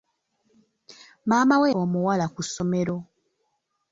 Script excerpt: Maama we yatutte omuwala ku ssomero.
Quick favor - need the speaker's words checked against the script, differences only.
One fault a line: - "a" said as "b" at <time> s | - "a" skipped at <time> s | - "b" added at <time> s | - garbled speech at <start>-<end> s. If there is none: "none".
- "yatutte" skipped at 1.7 s